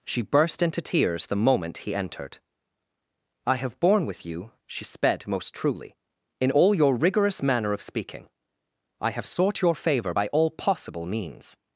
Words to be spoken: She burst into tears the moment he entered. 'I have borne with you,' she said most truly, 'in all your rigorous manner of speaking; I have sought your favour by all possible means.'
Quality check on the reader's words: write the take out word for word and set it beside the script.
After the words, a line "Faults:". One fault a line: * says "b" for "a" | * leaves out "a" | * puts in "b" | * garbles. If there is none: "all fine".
She burst into tears the moment he entered. 'I have borne with you,' she sped most truly, 'in all your rigorous manner of speaking; I have sought your favour by all possible means.'
Faults:
* says "sped" for "said"